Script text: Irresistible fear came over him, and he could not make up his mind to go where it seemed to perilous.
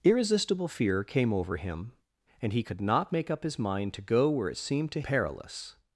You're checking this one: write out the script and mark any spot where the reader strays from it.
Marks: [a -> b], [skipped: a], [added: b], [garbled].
Irresistible fear came over him, and he could not make up his mind to go where it seemed to perilous.